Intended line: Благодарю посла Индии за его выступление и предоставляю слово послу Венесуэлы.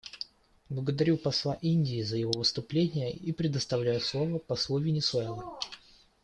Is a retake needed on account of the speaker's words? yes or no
no